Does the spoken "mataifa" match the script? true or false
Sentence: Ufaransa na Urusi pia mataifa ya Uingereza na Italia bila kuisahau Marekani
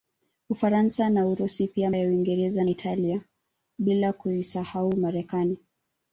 false